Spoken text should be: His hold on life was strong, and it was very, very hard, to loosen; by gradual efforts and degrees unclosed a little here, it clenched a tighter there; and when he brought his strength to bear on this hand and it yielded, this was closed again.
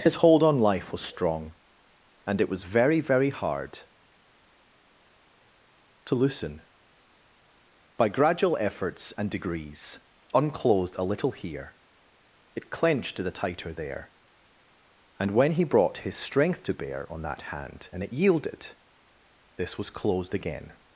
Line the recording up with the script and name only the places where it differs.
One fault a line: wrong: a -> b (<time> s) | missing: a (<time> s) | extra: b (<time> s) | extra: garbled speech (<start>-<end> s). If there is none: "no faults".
wrong: a -> the (13.2 s)
wrong: this -> that (17.2 s)